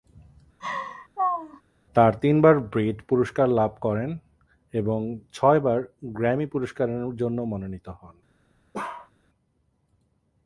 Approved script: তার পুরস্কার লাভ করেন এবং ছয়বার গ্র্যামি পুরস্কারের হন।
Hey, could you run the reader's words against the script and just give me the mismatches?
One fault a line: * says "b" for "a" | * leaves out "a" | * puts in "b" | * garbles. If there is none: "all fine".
* puts in "তিনবার ব্রিট"
* puts in "জন্য মনোনীত"